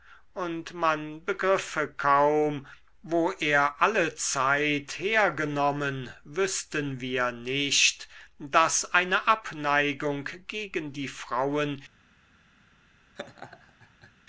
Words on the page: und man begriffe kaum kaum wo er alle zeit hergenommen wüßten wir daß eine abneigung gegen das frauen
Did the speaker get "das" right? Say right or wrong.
wrong